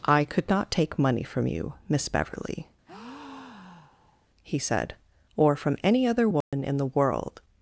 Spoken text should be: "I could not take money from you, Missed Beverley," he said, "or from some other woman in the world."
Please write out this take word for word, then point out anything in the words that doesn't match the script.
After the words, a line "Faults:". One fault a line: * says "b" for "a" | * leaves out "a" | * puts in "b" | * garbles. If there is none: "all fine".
"I could not take money from you, Miss Beverley," he said, "or from any other woman in the world."
Faults:
* says "Miss" for "Missed"
* says "any" for "some"